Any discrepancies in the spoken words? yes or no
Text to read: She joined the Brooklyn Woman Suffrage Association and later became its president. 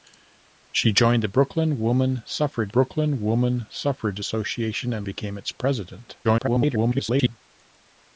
yes